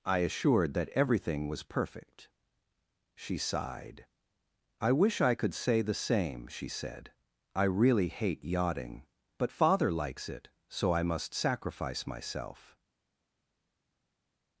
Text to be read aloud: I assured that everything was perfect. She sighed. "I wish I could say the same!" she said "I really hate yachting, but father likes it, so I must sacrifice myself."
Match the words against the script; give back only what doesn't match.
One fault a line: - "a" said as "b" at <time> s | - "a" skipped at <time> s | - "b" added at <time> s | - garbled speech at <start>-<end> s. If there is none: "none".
none